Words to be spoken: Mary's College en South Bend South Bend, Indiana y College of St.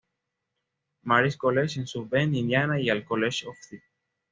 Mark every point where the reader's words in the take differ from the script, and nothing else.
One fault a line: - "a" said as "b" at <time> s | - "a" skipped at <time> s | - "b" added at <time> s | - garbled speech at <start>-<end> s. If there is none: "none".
- "South Bend" skipped at 2.3 s
- "al" added at 2.9 s